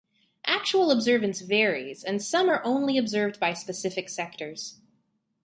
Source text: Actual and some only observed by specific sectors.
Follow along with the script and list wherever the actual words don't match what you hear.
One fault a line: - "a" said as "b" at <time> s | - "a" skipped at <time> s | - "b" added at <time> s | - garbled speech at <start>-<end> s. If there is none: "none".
- "observance varies" added at 0.9 s
- "are" added at 2.5 s